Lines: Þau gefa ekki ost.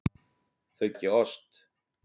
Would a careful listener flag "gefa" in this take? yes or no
yes